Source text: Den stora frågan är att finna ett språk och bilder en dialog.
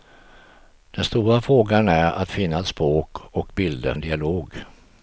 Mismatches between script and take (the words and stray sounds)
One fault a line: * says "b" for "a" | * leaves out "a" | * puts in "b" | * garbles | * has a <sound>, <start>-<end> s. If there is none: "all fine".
all fine